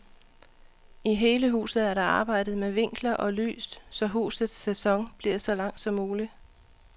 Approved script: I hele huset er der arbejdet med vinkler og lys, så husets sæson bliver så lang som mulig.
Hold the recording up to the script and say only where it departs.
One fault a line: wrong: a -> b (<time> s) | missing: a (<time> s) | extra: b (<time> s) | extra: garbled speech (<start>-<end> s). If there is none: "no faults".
no faults